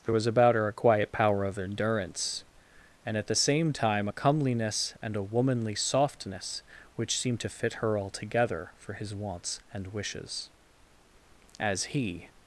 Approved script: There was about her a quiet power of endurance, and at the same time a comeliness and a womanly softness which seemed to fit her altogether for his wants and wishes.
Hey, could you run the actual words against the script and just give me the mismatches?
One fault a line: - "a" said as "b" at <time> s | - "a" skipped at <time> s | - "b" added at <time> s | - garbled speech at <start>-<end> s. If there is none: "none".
- "As he" added at 11.6 s